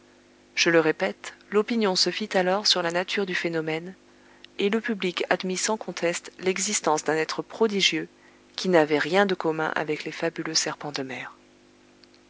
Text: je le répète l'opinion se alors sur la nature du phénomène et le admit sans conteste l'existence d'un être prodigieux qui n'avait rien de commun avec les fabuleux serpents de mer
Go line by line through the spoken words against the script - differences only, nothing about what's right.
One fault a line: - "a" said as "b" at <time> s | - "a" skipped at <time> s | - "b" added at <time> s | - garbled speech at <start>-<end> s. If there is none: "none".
- "fit" added at 2.1 s
- "public" added at 4.8 s